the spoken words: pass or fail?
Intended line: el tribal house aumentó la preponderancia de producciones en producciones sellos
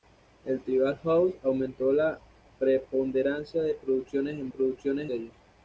pass